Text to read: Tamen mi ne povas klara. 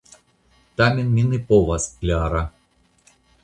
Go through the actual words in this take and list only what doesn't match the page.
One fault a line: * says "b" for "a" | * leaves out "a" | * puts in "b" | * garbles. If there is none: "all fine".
all fine